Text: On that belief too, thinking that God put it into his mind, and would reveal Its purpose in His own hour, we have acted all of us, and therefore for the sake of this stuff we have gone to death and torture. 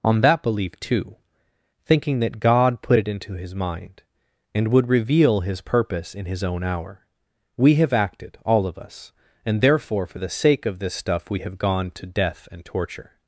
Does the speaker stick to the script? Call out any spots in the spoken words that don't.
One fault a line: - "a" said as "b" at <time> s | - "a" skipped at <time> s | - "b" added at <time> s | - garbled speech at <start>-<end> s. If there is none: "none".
- "Its" said as "His" at 5.4 s